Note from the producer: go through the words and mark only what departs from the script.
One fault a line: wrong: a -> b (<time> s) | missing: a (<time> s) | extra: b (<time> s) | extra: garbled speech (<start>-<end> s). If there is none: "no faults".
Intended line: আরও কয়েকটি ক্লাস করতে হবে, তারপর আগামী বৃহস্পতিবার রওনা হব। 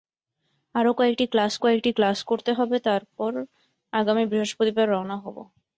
extra: কয়েকটি ক্লাস (1.6 s)